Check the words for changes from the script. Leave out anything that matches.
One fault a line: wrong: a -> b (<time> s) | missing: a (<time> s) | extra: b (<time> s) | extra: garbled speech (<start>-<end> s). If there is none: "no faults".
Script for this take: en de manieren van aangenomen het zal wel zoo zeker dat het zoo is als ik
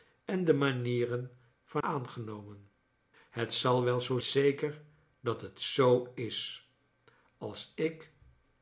no faults